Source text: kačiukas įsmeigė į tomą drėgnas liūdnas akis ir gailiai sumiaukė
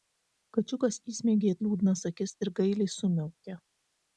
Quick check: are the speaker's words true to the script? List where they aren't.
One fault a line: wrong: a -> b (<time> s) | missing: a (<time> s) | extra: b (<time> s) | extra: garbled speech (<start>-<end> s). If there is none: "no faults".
missing: tomą drėgnas (1.6 s)